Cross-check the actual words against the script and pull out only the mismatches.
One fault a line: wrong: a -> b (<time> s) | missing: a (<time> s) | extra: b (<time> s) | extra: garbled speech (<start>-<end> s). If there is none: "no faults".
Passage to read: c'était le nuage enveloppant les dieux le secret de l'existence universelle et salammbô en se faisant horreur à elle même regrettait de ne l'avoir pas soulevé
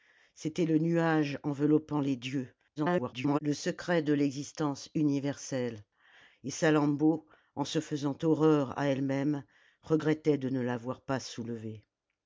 extra: garbled speech (2.8-3.4 s)